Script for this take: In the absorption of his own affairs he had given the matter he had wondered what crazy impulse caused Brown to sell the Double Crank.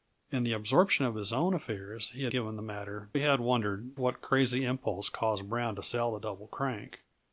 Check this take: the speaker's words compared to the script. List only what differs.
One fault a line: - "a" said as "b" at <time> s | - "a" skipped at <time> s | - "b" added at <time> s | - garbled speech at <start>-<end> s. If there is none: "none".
none